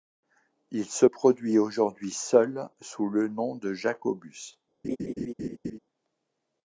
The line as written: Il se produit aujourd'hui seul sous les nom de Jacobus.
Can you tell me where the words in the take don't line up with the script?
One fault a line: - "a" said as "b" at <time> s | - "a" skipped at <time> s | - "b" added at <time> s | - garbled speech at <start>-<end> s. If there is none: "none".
- "les" said as "le" at 3.1 s